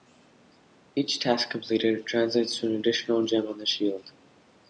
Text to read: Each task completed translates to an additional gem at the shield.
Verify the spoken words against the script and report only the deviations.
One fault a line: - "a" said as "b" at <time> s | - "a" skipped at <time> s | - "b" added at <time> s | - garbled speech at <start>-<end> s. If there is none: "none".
- "at" said as "on" at 3.5 s